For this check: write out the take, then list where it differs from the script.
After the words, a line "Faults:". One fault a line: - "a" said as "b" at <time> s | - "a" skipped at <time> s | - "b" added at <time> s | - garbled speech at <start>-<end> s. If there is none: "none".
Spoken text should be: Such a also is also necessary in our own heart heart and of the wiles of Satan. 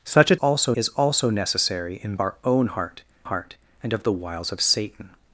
Such a also is also necessary in our own heart heart and of the wiles of Satan.
Faults:
none